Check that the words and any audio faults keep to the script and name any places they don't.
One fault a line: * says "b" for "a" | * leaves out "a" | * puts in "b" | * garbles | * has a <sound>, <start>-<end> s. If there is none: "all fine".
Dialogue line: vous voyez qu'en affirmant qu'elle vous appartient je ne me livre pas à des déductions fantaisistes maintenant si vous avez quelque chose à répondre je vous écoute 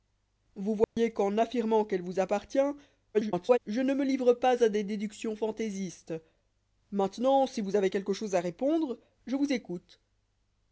* has a dropout, 0.8-1.0 s
* garbles